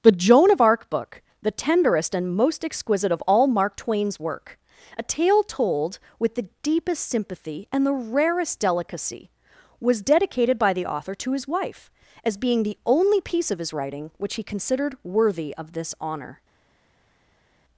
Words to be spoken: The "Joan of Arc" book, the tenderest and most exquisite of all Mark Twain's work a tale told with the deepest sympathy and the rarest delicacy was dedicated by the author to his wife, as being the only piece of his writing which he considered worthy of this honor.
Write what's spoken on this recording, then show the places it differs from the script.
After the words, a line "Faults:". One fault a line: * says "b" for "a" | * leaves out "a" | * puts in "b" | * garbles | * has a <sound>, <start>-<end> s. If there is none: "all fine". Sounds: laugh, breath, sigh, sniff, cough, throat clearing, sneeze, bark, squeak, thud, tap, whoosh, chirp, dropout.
The "Joan of Arc" book, the tenderest and most exquisite of all Mark Twain's work a tale told with the deepest sympathy and the rarest delicacy was dedicated by the author to his wife, as being the only piece of his writing which he considered worthy of this honor.
Faults:
all fine